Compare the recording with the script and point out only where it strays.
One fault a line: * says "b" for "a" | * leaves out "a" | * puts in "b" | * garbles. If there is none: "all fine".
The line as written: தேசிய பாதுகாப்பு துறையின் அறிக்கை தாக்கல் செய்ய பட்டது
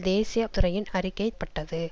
* leaves out "பாதுகாப்பு"
* leaves out "தாக்கல் செய்ய"